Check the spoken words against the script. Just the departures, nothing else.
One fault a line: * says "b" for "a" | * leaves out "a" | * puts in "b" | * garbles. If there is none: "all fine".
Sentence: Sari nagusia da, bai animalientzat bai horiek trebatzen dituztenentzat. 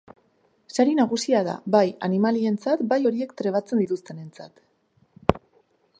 all fine